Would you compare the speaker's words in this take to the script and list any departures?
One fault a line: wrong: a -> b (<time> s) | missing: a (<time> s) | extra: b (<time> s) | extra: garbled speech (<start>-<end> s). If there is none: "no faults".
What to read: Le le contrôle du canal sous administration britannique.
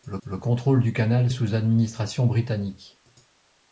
no faults